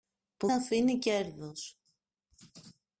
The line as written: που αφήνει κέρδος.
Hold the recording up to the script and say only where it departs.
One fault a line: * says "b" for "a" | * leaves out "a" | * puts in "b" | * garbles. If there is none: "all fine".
all fine